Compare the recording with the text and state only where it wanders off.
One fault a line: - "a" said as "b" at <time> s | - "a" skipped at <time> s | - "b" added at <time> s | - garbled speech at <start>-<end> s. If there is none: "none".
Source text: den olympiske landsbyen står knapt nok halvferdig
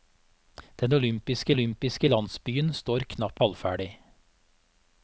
- "olympiske" added at 1.5 s
- "nok" skipped at 3.4 s